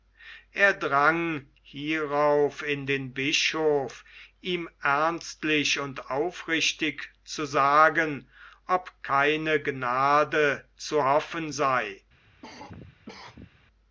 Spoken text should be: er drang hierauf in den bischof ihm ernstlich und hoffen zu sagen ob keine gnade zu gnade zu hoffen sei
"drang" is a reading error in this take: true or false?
false